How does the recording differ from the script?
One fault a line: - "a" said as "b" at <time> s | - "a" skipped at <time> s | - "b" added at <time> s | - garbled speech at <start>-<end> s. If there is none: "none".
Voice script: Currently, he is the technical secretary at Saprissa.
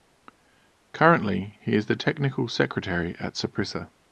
none